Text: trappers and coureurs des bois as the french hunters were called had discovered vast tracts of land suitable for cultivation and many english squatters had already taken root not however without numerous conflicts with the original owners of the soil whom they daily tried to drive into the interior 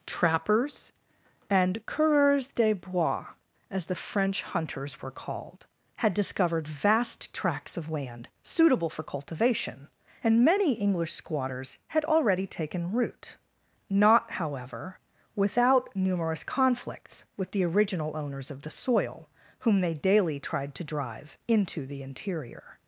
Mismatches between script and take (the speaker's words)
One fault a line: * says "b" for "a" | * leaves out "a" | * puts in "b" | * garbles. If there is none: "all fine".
all fine